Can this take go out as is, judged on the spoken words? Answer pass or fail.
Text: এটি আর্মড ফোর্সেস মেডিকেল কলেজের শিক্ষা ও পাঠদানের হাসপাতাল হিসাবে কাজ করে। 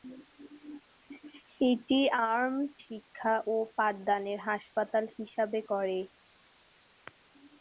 fail